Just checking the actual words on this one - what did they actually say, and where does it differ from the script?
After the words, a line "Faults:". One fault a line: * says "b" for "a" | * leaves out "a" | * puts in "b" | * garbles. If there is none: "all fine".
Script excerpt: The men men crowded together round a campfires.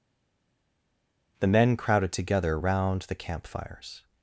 The men crowded together round the campfires.
Faults:
* leaves out "men"
* says "the" for "a"